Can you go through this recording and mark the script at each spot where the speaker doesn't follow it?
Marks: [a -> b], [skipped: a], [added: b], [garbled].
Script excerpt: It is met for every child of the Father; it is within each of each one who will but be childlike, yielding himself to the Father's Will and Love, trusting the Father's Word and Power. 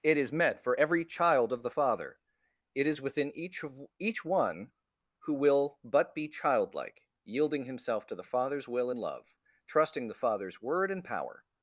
It is met for every child of the Father; it is within each of each one who will but be childlike, yielding himself to the Father's Will and Love, trusting the Father's Word and Power.